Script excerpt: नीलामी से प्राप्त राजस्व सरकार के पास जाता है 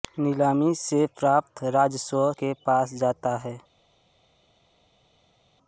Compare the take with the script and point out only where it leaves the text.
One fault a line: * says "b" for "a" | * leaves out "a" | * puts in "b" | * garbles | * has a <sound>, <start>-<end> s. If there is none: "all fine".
* leaves out "सरकार"